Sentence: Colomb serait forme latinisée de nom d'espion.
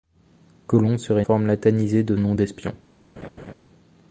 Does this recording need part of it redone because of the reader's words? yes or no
no